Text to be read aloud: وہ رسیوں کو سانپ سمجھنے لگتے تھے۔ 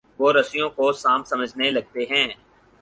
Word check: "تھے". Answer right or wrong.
wrong